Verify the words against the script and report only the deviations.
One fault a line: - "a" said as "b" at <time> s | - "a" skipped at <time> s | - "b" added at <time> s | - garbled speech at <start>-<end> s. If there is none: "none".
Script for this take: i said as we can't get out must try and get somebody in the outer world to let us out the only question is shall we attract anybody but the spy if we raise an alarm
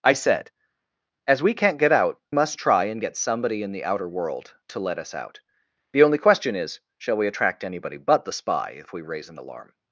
none